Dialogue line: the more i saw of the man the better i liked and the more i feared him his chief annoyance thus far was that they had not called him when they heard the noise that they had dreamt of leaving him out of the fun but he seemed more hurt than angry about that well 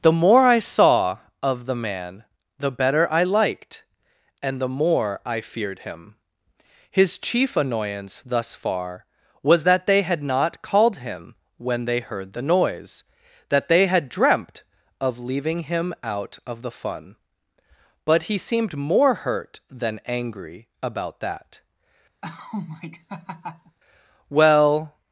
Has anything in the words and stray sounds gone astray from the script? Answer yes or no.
yes